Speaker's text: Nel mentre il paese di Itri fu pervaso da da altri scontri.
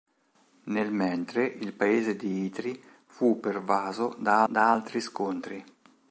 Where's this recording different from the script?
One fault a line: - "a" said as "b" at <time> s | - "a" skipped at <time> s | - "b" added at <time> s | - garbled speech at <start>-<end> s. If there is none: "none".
none